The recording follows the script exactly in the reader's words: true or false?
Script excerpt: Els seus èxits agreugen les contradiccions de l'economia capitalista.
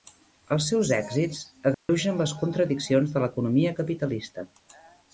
true